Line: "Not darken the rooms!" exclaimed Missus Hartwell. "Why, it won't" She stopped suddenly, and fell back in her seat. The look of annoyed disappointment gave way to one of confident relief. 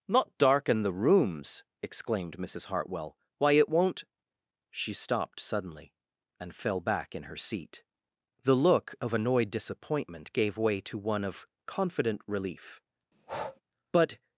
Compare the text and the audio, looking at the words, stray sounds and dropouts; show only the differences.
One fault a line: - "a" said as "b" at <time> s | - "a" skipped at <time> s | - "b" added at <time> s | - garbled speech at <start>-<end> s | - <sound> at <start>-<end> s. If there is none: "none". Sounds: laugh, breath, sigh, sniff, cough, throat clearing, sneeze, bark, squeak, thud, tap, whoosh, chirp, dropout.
- breath at 13.1-13.6 s
- "But" added at 13.9 s